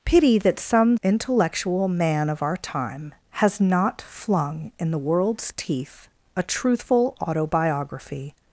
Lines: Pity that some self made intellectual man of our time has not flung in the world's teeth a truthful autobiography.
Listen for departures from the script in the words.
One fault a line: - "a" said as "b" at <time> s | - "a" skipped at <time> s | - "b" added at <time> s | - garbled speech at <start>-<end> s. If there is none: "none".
- "self made" skipped at 1.0 s